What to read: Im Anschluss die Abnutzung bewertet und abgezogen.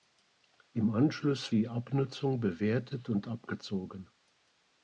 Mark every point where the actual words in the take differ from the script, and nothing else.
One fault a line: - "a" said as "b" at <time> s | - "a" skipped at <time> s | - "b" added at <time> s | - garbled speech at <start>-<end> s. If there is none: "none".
none